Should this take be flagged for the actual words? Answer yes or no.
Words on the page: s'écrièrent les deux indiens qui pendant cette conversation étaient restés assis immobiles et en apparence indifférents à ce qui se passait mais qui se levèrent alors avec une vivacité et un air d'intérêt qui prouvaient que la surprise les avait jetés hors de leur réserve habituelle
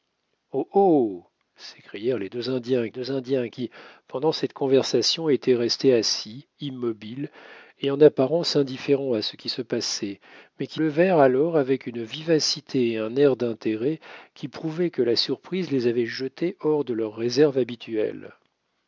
yes